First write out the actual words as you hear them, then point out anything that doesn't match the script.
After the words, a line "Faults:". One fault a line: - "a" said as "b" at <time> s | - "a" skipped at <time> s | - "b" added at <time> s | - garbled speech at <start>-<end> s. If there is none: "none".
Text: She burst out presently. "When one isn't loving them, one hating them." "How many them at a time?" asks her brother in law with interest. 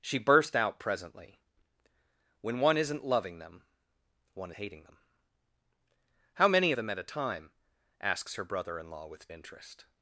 She burst out presently. "When one isn't loving them, one hating them." "How many them at a time?" asks her brother in law with interest.
Faults:
none